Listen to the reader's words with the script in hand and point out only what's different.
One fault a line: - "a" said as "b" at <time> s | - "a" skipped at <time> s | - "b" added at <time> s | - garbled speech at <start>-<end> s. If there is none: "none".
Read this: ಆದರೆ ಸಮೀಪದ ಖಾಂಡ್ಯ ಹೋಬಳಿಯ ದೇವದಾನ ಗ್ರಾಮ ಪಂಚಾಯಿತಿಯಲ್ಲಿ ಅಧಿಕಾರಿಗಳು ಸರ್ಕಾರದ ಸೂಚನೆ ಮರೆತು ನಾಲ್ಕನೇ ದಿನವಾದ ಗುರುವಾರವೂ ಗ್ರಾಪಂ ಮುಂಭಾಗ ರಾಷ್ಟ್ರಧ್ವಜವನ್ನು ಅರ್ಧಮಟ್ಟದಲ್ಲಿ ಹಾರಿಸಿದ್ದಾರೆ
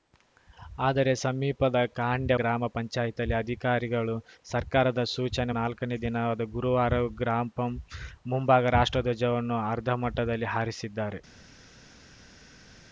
- "ಹೋಬಳಿಯ ದೇವದಾನ" skipped at 2.4 s
- "ಮರೆತು" skipped at 5.5 s